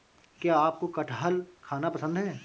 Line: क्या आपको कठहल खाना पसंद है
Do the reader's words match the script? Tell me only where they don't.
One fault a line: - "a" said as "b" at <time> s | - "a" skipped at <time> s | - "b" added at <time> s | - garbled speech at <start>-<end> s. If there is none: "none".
none